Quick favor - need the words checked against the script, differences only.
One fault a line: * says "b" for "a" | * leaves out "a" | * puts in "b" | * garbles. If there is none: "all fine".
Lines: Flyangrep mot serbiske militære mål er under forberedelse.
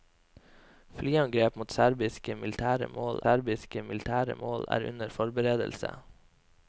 * puts in "serbiske militære mål"